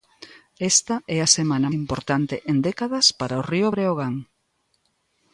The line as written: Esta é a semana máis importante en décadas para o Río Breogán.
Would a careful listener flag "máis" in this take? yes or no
yes